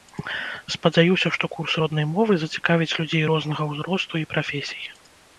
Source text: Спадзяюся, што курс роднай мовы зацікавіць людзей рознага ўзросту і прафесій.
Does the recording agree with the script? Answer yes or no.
yes